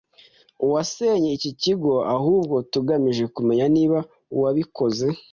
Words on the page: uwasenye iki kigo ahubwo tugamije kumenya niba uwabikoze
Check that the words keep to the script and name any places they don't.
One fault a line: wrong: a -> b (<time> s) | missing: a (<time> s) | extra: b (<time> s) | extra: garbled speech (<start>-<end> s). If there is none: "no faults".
no faults